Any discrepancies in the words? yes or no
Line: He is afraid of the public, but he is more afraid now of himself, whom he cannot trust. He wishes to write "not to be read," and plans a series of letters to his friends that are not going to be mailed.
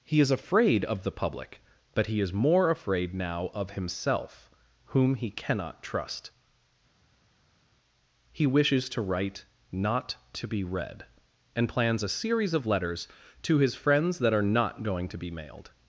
no